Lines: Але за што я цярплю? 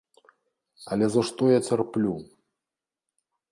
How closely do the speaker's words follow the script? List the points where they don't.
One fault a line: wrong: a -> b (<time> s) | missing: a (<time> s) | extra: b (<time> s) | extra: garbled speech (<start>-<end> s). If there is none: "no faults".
no faults